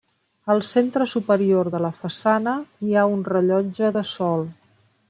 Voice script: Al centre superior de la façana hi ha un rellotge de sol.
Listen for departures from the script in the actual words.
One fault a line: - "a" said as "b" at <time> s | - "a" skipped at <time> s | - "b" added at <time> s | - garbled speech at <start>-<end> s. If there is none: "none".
none